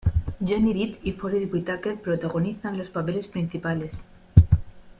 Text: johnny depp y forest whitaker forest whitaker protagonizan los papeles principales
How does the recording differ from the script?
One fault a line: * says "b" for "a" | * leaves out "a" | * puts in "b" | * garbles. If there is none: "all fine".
* leaves out "forest whitaker"